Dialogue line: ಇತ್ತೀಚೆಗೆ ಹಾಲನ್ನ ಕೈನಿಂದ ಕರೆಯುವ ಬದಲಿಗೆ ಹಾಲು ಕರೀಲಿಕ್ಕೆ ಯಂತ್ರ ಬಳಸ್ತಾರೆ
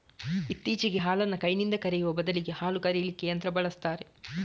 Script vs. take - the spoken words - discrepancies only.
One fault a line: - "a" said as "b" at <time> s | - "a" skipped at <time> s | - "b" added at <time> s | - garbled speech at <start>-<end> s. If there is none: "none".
none